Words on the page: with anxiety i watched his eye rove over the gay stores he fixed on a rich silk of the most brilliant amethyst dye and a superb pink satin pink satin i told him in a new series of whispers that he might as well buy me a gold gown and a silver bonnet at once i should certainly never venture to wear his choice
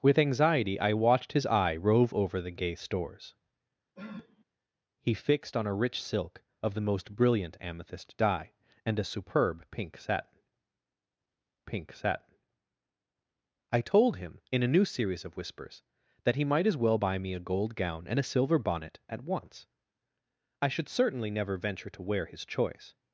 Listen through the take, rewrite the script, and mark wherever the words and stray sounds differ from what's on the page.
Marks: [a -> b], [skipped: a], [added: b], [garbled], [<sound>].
with anxiety i watched his eye rove over the gay stores [sniff] he fixed on a rich silk of the most brilliant amethyst dye and a superb pink satin pink satin i told him in a new series of whispers that he might as well buy me a gold gown and a silver bonnet at once i should certainly never venture to wear his choice